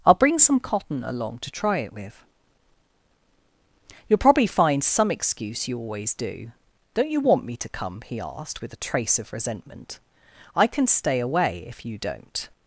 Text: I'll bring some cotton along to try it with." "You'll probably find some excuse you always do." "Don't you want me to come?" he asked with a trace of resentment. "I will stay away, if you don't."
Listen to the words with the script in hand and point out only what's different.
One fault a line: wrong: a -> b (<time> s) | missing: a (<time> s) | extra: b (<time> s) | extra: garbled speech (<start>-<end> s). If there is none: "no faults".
wrong: will -> can (10.7 s)